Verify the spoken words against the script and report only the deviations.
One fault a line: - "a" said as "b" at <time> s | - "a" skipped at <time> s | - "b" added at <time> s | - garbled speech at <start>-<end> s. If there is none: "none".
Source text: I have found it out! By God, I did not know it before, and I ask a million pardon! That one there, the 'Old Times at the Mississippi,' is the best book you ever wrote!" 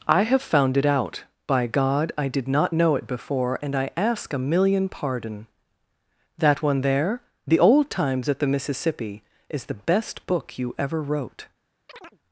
none